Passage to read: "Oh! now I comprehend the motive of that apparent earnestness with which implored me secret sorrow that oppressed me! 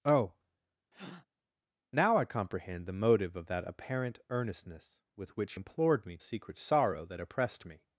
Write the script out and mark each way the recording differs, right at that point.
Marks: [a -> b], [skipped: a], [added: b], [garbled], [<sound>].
"Oh! [breath] now I comprehend the motive of that apparent earnestness with which implored me secret sorrow that oppressed me!